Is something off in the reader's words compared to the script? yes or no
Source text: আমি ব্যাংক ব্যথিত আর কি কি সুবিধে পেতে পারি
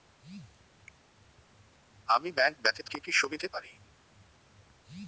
yes